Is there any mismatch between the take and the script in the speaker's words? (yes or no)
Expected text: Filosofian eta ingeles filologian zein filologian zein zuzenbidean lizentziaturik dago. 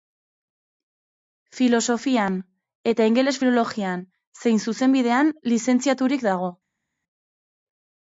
yes